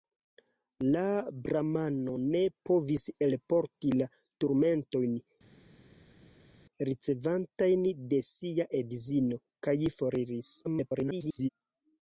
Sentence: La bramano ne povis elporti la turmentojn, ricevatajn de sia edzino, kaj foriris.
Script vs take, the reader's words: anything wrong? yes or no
yes